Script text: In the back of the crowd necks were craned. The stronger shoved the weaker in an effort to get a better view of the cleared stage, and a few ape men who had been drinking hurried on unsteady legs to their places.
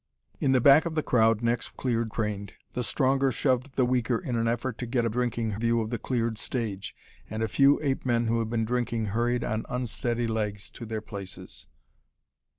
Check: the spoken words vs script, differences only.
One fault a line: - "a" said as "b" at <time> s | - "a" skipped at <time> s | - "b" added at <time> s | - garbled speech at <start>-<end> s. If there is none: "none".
- "were" said as "cleared" at 1.7 s
- "better" said as "drinking" at 5.1 s